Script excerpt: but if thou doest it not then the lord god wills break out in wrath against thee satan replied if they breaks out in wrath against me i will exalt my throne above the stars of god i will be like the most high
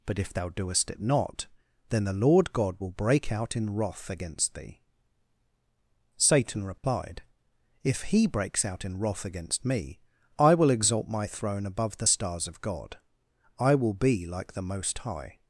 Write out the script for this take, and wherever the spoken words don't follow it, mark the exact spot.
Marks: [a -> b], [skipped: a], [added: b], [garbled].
but if thou doest it not then the lord god [wills -> will] break out in wrath against thee satan replied if [they -> he] breaks out in wrath against me i will exalt my throne above the stars of god i will be like the most high